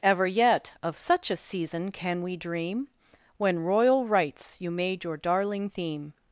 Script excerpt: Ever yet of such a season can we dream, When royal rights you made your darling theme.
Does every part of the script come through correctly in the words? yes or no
yes